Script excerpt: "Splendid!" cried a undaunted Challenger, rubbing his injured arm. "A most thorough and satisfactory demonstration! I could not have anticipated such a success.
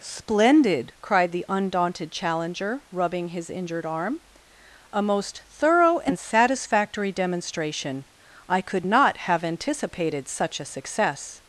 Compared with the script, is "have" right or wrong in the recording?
right